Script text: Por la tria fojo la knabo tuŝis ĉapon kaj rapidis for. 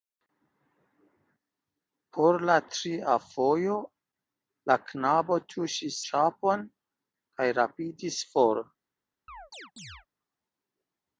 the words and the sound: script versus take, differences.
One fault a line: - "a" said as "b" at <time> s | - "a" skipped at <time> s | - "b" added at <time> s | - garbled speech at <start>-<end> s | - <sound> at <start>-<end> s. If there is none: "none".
- chirp at 9.3-10.1 s